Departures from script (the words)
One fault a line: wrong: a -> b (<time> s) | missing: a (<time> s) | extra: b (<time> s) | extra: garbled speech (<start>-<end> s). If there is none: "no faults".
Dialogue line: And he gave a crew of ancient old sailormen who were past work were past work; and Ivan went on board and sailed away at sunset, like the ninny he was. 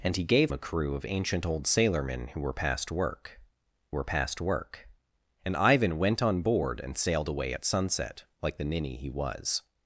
no faults